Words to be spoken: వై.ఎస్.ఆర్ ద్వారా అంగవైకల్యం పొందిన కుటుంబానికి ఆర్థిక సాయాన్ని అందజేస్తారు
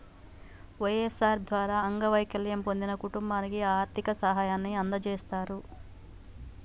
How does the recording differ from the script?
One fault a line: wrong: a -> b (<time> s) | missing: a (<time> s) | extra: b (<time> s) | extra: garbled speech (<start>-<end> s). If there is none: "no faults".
no faults